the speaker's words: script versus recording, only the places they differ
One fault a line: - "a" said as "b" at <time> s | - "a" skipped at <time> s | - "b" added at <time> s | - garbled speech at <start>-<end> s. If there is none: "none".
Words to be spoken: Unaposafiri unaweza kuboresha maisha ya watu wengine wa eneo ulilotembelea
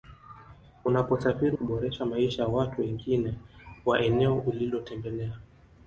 - "unaweza" skipped at 1.6 s